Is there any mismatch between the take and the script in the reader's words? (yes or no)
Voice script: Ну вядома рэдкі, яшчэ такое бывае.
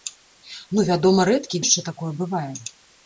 no